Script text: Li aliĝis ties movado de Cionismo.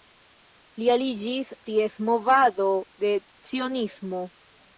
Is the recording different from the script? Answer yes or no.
no